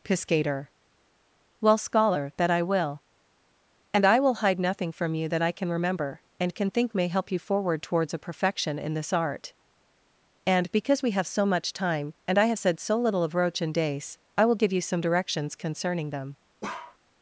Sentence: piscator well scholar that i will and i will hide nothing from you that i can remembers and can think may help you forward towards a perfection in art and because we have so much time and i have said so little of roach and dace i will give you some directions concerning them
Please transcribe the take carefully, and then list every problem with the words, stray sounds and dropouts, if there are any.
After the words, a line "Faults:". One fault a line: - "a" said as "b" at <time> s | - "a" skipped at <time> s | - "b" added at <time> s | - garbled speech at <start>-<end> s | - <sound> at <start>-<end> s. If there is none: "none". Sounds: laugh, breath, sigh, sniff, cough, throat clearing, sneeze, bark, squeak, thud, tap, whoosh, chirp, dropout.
piscator well scholar that i will and i will hide nothing from you that i can remember and can think may help you forward towards a perfection in this art and because we have so much time and i have said so little of roach and dace i will give you some directions concerning them
Faults:
- "remembers" said as "remember" at 5.7 s
- "this" added at 8.9 s
- bark at 16.6-17.0 s